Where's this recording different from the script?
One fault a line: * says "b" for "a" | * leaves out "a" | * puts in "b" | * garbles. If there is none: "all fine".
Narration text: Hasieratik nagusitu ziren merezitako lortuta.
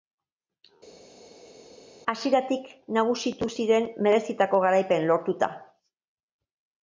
* puts in "garaipena"